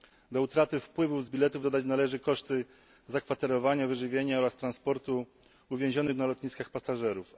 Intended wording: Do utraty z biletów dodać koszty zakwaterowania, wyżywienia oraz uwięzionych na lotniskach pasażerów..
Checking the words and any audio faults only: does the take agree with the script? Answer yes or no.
no